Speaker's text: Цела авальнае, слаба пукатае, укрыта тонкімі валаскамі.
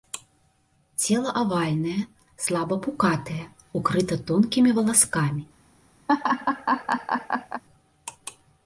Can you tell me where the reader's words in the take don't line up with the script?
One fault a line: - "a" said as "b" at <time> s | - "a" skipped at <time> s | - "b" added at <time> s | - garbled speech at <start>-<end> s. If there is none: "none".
none